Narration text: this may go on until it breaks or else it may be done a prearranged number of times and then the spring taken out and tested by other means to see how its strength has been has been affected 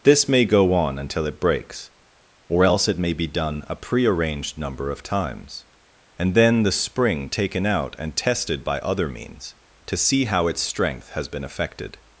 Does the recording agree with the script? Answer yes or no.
no